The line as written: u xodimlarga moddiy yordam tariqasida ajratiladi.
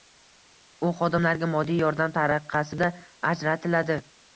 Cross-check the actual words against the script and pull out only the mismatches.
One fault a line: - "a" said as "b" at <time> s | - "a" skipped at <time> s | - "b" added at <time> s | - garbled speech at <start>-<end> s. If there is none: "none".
none